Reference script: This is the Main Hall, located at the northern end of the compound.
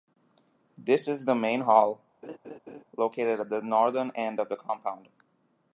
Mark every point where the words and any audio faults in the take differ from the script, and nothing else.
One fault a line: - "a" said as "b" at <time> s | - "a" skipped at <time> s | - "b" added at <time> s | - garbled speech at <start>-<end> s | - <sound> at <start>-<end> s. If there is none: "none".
- laugh at 2.2-2.8 s